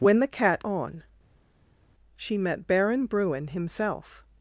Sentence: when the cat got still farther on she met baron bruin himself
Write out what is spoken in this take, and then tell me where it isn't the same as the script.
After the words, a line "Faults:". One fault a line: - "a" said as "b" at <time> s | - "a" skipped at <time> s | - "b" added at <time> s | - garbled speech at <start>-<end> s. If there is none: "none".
when the cat on she met baron bruin himself
Faults:
- "got still farther" skipped at 0.7 s